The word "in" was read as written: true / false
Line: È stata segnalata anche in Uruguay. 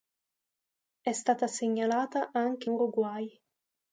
false